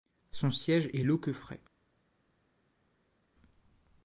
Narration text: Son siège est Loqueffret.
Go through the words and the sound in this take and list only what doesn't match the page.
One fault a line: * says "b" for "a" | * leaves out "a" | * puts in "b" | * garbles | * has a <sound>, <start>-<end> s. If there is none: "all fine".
all fine